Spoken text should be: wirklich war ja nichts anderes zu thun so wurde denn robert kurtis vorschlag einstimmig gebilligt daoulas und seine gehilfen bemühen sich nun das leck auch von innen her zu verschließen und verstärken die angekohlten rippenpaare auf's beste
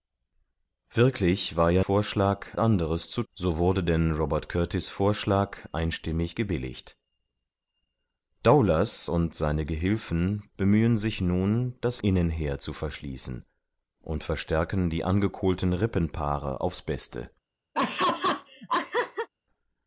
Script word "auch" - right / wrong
wrong